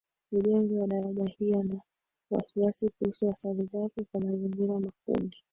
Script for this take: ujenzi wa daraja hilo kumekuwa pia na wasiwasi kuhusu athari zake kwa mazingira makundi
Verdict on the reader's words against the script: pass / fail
fail